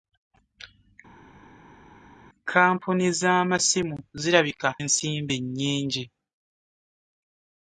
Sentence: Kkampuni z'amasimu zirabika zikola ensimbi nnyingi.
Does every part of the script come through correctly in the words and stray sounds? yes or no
no